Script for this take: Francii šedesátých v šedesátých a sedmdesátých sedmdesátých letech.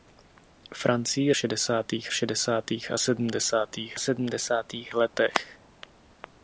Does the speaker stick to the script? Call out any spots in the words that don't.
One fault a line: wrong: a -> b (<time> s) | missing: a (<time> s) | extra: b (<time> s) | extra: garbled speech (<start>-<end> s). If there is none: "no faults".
no faults